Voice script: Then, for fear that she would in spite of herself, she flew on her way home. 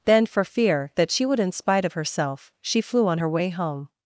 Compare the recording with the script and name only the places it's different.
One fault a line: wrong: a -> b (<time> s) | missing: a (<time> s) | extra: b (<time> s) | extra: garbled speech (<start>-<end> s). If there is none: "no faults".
no faults